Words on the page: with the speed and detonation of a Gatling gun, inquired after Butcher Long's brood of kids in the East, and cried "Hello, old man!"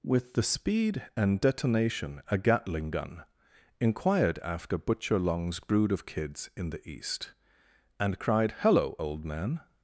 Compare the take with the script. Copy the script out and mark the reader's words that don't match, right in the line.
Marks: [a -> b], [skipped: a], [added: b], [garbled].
with the speed and detonation [skipped: of] a Gatling gun, inquired after Butcher Long's brood of kids in the East, and cried "Hello, old man!"